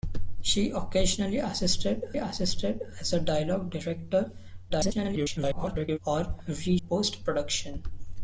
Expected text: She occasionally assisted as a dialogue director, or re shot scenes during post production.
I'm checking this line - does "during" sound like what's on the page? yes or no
no